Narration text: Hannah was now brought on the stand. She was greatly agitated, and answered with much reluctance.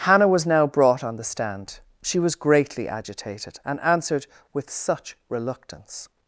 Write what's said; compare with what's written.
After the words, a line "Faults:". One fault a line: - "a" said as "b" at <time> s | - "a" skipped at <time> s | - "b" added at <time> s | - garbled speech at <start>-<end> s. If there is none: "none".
Hannah was now brought on the stand. She was greatly agitated, and answered with such reluctance.
Faults:
- "much" said as "such" at 4.7 s